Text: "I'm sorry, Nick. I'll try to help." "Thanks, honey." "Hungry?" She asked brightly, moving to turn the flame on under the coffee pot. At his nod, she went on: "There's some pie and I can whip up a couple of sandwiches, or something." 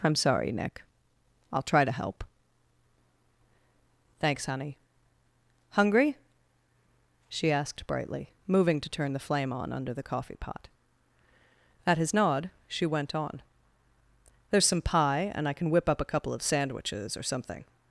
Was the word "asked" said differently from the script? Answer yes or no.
no